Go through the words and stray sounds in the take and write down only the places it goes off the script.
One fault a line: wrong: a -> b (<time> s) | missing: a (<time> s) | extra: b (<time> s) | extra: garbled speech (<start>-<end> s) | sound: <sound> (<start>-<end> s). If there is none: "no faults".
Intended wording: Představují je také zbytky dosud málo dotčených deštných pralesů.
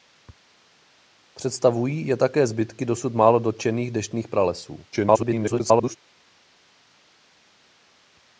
extra: garbled speech (4.9-6.0 s)